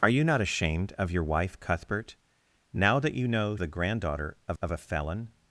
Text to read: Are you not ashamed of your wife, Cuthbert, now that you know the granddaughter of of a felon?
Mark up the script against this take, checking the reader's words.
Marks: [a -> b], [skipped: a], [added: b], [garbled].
Are you not ashamed of your wife, Cuthbert, now that you know the granddaughter of of a felon?